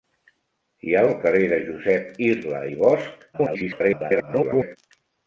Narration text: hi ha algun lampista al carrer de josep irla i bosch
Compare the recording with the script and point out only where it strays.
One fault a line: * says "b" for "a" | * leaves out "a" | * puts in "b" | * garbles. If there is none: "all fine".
* leaves out "algun lampista"
* garbles